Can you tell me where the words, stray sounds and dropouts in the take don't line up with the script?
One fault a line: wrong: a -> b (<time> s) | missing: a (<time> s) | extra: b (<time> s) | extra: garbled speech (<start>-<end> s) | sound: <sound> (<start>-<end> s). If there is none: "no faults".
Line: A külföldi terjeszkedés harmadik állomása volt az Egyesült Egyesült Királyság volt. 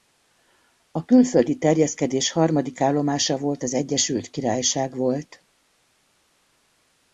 missing: Egyesült (4.3 s)